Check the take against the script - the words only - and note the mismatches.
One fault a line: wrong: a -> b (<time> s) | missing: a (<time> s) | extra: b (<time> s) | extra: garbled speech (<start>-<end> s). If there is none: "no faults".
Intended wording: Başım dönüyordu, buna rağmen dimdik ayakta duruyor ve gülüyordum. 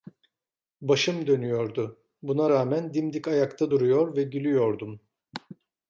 no faults